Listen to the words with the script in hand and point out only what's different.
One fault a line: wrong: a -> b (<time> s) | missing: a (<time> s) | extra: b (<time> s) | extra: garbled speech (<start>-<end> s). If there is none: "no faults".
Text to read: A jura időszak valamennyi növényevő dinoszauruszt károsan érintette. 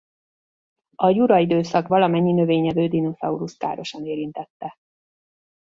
no faults